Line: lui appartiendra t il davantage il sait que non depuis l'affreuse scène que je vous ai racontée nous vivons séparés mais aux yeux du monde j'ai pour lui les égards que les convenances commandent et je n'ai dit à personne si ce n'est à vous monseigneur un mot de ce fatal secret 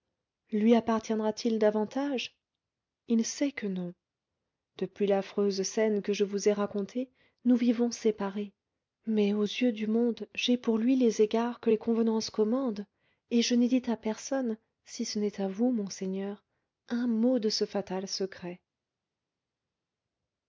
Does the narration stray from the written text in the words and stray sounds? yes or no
no